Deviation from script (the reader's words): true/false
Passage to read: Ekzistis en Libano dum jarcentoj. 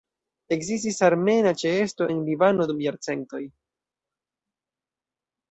true